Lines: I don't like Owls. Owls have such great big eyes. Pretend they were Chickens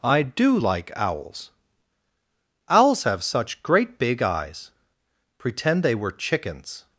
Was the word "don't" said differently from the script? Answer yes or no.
yes